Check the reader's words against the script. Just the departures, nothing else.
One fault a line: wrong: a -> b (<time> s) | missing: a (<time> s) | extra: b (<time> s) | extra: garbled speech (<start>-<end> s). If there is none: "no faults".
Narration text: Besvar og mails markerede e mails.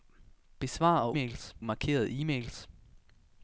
no faults